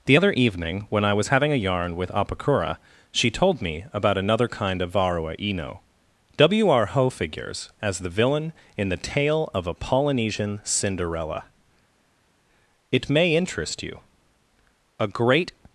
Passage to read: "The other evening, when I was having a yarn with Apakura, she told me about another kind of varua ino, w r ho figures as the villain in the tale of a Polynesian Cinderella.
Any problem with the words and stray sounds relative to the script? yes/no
yes